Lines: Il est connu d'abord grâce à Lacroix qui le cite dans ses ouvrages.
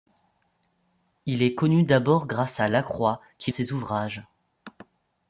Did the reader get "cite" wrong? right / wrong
wrong